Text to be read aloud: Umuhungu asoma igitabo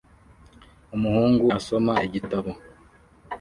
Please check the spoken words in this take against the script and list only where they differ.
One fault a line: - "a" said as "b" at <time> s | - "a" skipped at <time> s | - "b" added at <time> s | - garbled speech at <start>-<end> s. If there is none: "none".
none